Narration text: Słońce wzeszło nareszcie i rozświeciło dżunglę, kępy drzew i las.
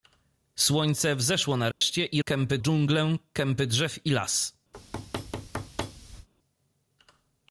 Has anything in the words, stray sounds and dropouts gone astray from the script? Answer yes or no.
yes